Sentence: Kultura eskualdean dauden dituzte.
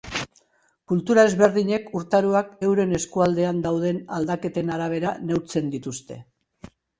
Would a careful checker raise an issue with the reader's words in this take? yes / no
yes